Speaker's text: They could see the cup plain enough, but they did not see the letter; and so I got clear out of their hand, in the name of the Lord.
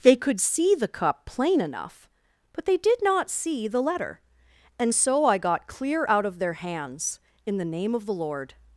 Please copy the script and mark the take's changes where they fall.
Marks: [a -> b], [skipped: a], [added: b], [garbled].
They could see the cup plain enough, but they did not see the letter; and so I got clear out of their [hand, -> hands] in the name of the Lord.